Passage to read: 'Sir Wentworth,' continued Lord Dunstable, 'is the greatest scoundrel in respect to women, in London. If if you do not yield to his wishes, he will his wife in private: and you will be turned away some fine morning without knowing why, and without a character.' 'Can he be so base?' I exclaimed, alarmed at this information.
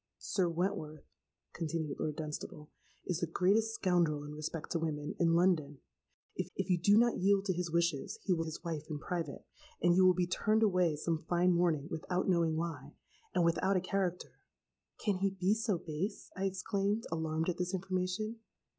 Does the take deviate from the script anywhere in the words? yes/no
no